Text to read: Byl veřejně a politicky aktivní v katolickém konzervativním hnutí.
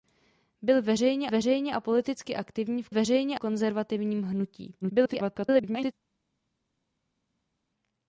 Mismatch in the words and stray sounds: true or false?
true